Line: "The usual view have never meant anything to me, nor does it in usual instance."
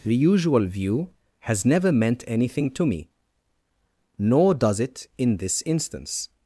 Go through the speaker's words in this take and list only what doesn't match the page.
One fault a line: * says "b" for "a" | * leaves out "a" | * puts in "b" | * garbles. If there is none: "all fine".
* says "has" for "have"
* says "this" for "usual"